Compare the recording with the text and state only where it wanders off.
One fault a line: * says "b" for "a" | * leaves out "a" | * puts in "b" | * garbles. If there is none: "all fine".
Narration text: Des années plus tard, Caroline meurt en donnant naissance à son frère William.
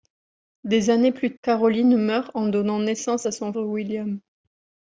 * leaves out "tard"
* leaves out "frère"